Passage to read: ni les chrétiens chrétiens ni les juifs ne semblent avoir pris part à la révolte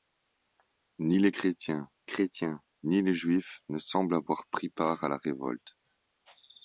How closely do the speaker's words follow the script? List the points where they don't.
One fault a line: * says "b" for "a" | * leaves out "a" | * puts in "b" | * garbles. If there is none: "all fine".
all fine